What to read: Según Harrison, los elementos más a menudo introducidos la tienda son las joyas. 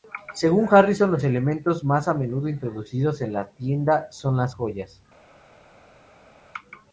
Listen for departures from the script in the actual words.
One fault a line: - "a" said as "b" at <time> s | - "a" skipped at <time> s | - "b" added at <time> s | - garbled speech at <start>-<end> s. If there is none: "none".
- "en" added at 3.2 s